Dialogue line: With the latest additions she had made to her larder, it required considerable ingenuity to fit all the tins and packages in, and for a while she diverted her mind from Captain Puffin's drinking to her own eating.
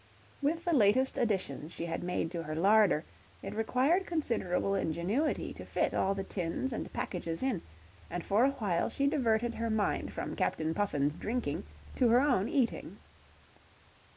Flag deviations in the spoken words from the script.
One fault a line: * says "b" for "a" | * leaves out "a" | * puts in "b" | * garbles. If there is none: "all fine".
all fine